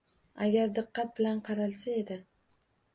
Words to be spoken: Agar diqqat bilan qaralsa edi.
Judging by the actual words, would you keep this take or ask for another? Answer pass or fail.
pass